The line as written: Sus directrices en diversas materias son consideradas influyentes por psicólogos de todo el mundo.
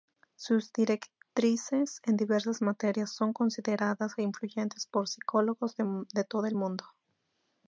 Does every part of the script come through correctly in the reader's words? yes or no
yes